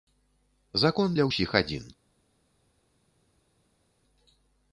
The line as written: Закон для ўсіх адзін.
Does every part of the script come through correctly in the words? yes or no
yes